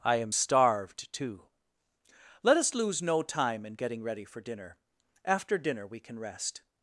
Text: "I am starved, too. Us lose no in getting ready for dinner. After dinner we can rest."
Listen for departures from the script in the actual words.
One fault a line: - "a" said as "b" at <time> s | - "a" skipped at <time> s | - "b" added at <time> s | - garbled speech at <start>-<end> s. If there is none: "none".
- "Let" added at 2.4 s
- "time" added at 3.2 s